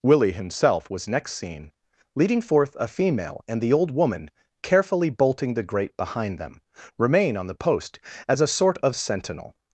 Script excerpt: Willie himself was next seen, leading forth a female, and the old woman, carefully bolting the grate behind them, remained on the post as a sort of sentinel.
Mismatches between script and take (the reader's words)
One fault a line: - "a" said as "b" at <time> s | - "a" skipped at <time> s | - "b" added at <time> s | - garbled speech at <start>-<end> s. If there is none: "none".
- "remained" said as "remain" at 7.0 s